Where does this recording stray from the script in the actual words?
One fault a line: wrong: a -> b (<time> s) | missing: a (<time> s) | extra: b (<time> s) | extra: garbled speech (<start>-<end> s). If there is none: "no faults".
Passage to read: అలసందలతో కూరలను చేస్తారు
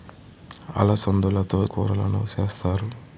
no faults